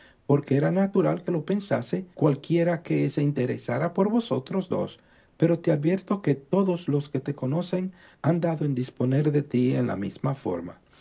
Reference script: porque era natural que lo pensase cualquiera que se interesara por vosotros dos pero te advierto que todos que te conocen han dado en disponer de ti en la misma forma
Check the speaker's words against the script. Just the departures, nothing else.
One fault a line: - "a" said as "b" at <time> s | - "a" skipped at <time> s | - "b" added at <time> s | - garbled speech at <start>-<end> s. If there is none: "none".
- "los" added at 6.9 s